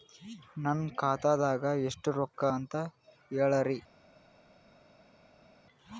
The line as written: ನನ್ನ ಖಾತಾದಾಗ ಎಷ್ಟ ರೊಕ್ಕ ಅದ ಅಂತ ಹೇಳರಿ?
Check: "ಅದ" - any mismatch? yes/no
yes